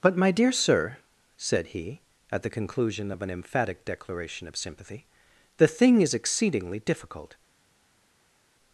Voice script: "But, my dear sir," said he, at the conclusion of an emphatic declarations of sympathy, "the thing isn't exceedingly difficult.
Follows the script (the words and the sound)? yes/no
no